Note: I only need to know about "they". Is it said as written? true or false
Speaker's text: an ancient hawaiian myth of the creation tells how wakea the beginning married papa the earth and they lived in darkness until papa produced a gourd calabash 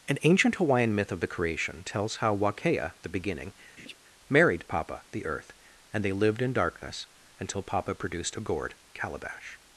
true